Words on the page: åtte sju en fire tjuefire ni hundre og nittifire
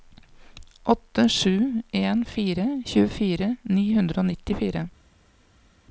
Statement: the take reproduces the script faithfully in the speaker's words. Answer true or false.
true